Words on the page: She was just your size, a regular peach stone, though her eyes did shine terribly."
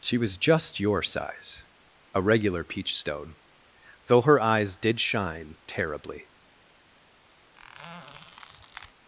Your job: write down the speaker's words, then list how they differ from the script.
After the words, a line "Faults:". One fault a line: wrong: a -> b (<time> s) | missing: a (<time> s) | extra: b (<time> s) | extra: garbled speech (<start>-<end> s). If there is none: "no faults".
She was just your size, a regular peach stone, though her eyes did shine terribly."
Faults:
no faults